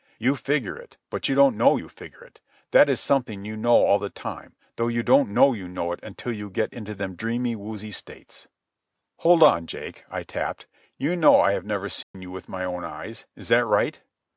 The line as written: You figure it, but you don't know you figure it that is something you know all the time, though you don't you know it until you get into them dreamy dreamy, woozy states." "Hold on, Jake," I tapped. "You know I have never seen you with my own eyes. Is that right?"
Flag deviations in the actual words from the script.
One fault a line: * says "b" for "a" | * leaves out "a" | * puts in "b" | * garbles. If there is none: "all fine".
* puts in "know"
* leaves out "dreamy"